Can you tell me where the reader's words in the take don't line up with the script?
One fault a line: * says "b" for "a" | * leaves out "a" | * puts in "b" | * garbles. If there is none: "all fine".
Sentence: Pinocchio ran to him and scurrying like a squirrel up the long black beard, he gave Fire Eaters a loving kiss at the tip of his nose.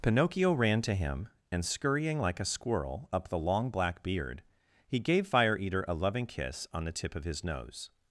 * says "Eater" for "Eaters"
* says "on" for "at"